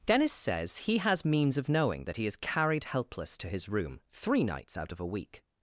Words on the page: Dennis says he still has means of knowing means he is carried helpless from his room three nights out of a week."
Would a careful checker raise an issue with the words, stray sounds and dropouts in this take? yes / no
yes